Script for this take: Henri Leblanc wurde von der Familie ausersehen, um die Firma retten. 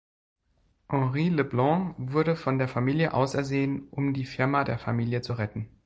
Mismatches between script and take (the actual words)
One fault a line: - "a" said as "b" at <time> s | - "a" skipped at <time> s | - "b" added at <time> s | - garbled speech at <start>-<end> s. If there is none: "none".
- "der Familie zu" added at 4.6 s